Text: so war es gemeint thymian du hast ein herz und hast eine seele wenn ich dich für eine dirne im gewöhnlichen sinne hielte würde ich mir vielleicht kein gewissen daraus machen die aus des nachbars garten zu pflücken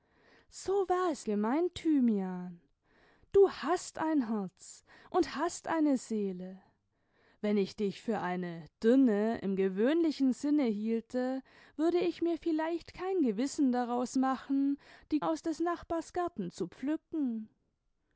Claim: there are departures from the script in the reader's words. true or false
false